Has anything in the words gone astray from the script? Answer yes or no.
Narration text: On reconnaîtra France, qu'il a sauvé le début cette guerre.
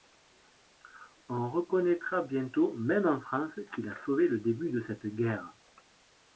yes